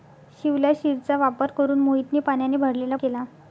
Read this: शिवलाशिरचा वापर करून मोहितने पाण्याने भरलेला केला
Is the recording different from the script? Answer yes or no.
no